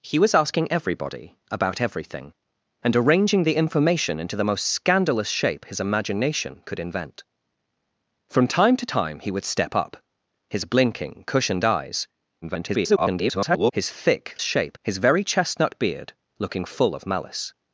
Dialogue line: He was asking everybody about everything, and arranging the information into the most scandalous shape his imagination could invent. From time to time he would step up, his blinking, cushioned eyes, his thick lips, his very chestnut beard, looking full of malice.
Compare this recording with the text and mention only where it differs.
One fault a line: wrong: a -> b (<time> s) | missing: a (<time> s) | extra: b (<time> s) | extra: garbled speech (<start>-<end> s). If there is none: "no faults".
extra: garbled speech (12.4-13.7 s)
wrong: lips -> shape (14.4 s)